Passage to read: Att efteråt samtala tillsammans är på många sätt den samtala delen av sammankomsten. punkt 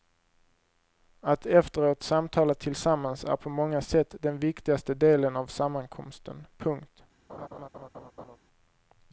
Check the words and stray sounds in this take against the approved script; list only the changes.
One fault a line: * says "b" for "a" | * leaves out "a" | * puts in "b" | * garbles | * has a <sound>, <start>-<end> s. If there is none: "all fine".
* says "viktigaste" for "samtala"
* has a laugh, 7.3-8.4 s